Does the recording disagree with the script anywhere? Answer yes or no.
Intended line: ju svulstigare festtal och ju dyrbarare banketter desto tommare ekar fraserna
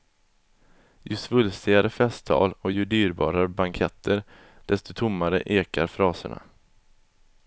no